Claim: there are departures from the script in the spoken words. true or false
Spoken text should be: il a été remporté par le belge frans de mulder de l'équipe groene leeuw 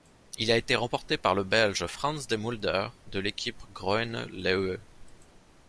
false